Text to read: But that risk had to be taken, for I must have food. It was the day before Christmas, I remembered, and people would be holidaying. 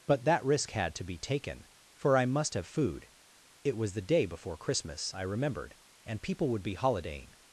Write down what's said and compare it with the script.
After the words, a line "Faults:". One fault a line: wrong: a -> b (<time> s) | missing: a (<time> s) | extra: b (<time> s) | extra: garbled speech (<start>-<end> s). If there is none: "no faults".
But that risk had to be taken, for I must have food. It was the day before Christmas, I remembered, and people would be holidaying.
Faults:
no faults